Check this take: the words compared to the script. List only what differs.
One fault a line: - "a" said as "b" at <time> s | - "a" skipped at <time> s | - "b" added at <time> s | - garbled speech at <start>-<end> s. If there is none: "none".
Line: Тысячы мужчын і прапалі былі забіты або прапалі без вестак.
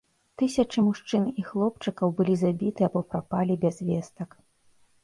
- "прапалі" said as "хлопчыкаў" at 1.5 s